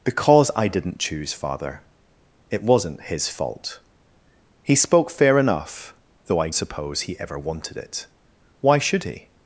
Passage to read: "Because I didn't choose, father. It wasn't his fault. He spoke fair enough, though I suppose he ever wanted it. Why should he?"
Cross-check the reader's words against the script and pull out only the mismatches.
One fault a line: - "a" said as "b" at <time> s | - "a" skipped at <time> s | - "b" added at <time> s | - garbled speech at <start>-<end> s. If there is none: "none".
none